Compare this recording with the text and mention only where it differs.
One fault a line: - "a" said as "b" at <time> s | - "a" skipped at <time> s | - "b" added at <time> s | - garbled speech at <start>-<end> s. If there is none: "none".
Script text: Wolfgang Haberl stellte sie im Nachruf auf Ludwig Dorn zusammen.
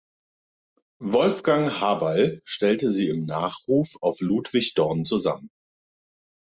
none